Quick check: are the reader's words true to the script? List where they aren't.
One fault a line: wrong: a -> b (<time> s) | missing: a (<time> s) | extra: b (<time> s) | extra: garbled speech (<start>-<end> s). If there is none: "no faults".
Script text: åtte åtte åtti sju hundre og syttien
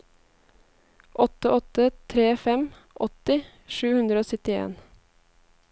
extra: tre fem (2.1 s)